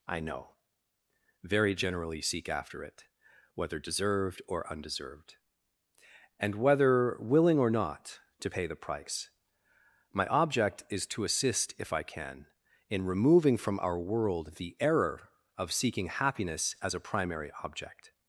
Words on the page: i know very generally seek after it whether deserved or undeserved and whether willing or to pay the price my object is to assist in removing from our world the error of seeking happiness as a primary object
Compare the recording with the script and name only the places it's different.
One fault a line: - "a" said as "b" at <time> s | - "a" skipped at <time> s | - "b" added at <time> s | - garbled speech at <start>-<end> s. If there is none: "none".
- "not" added at 7.7 s
- "if i can" added at 11.8 s